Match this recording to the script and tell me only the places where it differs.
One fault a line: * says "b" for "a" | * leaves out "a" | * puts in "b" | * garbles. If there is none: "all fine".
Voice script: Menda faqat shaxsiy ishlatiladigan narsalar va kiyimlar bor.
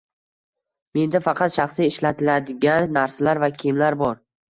all fine